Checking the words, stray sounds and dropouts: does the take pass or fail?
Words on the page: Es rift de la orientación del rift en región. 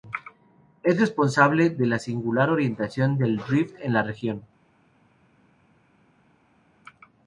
fail